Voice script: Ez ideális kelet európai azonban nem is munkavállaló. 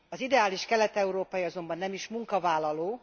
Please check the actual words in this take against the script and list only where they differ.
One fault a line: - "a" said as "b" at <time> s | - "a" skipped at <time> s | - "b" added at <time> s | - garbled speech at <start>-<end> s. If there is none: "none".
- "Ez" said as "Az" at 0.1 s